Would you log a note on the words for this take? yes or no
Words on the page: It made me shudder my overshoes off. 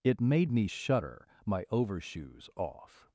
no